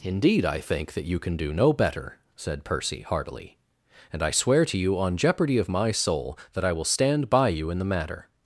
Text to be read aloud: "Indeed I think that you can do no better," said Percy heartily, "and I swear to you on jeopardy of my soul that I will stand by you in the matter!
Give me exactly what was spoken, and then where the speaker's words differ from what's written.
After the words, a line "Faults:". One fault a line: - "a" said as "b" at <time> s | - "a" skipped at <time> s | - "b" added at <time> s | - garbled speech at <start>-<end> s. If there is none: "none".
"Indeed I think that you can do no better," said Percy heartily, "and I swear to you on jeopardy of my soul that I will stand by you in the matter!
Faults:
none